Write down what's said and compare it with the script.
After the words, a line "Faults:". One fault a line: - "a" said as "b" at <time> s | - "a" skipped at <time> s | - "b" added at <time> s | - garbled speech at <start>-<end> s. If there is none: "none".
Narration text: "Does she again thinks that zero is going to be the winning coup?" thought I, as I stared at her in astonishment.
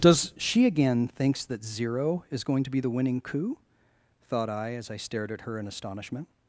"Does she again thinks that zero is going to be the winning coup?" thought I, as I stared at her in astonishment.
Faults:
none